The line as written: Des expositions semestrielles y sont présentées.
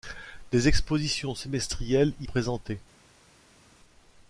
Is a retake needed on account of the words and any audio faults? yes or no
yes